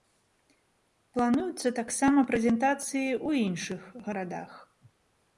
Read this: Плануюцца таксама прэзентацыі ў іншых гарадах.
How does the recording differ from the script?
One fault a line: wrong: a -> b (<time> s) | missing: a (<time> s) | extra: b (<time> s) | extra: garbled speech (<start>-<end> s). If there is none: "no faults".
no faults